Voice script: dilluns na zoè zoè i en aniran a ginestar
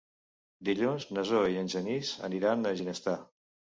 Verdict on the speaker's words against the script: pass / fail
fail